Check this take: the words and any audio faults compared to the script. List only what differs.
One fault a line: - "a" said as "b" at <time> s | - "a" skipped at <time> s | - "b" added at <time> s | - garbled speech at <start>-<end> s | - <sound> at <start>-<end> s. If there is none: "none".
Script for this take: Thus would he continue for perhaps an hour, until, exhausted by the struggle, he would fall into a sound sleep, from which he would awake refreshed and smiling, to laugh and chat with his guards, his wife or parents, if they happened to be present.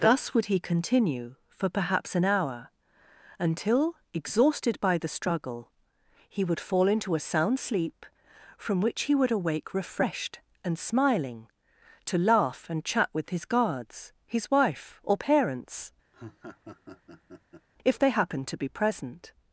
- laugh at 16.1-17.7 s